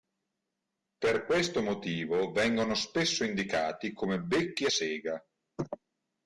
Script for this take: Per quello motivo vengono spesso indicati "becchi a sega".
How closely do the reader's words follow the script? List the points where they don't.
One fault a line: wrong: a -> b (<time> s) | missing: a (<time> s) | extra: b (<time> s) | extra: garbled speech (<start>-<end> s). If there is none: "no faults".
wrong: quello -> questo (1.3 s)
extra: come (3.9 s)